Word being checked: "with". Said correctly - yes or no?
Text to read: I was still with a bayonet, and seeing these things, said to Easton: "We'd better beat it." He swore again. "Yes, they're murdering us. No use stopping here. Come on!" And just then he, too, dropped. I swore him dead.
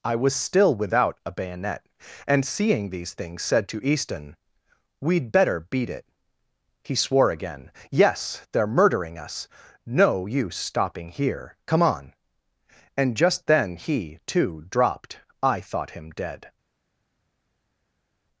no